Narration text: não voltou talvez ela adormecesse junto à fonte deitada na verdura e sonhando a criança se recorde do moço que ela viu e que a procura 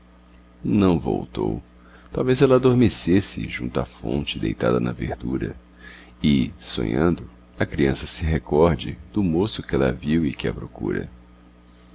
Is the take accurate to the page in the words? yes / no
yes